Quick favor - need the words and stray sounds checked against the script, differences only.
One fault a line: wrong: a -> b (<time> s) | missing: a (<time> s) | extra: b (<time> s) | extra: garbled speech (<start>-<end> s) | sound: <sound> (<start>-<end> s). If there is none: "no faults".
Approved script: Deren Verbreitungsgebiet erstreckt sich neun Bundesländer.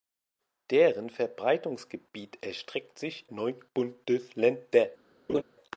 sound: laugh (5.3-5.4 s)